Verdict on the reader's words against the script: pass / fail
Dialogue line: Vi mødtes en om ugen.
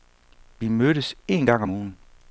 fail